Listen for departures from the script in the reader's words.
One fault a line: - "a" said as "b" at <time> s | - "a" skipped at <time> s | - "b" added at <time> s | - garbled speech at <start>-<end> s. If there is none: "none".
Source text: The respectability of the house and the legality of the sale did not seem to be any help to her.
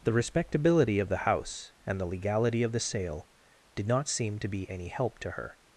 none